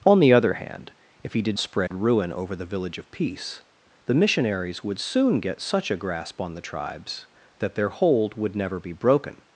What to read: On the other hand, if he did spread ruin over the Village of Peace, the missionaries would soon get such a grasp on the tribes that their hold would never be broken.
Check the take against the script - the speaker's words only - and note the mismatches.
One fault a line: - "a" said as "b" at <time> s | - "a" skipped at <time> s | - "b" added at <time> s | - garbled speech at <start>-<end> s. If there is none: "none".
none